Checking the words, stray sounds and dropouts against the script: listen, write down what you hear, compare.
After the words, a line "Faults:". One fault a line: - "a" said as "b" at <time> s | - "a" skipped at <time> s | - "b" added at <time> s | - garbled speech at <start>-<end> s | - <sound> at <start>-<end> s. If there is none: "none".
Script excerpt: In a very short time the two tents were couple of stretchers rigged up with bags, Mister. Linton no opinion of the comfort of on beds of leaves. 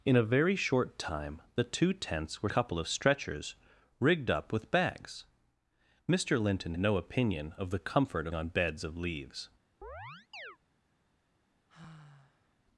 In a very short time the two tents were couple of stretchers rigged up with bags, Mister. Linton no opinion of the comfort of on beds of leaves.
Faults:
- chirp at 9.8-10.6 s
- sigh at 11.7-12.6 s